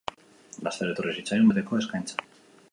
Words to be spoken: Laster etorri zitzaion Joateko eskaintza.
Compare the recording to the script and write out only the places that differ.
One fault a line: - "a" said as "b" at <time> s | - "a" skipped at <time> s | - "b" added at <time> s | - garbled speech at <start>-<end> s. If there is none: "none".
none